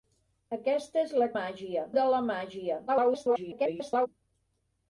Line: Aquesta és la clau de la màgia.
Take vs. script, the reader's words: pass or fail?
fail